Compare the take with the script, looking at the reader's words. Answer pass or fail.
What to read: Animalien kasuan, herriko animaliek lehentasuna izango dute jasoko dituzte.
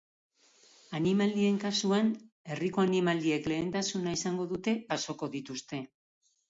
pass